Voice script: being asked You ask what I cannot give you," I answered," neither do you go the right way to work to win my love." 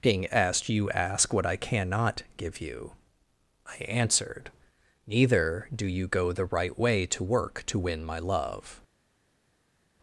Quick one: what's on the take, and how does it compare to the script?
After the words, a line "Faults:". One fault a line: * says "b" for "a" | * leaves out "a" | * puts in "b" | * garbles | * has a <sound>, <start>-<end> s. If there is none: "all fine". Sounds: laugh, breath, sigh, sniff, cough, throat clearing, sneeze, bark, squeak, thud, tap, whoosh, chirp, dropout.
being asked You ask what I cannot give you," I answered," neither do you go the right way to work to win my love."
Faults:
all fine